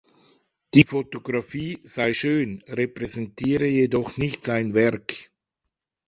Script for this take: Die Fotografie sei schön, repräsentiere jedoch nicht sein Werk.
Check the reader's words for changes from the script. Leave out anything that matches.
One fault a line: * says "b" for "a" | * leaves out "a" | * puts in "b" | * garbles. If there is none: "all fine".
all fine